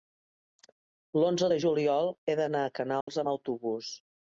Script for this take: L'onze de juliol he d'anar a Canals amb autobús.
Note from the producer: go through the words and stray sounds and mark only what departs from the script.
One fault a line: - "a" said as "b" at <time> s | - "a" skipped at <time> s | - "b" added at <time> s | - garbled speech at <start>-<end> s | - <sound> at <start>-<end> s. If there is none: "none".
- dropout at 3.0-3.1 s